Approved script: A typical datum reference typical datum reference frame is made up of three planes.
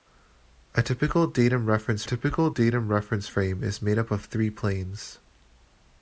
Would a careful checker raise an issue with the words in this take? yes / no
no